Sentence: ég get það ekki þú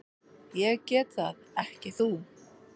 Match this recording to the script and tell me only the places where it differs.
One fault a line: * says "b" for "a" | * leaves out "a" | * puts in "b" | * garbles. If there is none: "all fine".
all fine